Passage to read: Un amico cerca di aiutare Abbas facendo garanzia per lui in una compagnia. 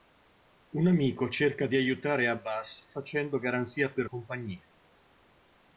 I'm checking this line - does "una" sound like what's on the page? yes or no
no